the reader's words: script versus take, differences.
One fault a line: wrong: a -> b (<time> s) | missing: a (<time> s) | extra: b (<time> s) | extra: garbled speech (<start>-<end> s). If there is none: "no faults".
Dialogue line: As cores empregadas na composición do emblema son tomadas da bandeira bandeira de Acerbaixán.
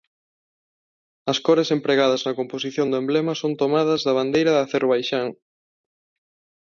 missing: bandeira (4.5 s)